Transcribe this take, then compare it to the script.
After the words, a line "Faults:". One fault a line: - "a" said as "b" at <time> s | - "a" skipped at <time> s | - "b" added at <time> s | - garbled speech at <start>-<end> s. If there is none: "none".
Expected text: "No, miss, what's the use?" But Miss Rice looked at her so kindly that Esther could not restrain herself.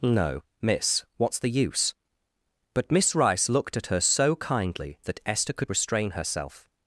"No, miss, what's the use?" But Miss Rice looked at her so kindly that Esther could restrain herself.
Faults:
- "not" skipped at 5.7 s